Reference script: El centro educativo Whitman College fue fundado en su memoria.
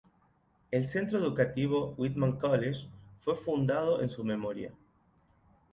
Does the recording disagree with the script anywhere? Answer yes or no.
no